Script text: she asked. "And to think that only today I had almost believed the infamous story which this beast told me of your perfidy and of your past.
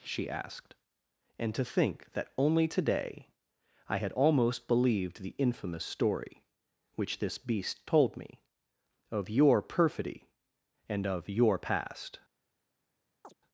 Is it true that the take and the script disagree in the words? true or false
false